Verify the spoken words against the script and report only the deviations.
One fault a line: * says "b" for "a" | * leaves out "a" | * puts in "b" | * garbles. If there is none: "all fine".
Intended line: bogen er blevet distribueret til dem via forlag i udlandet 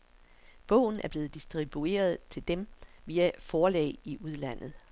all fine